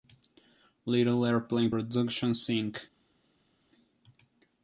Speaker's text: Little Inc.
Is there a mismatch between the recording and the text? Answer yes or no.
yes